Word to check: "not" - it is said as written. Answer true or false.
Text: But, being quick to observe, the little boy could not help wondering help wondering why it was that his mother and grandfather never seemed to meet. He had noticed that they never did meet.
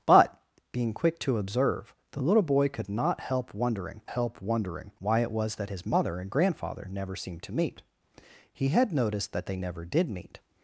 true